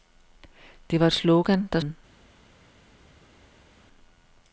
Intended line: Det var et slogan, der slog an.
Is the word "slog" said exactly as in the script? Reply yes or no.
no